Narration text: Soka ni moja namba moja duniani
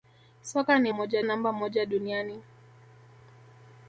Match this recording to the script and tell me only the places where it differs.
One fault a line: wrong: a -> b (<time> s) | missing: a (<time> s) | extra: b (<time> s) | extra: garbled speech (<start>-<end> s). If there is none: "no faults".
no faults